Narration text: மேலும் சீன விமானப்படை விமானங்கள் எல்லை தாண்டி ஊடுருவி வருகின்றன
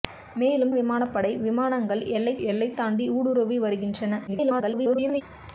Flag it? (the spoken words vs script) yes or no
yes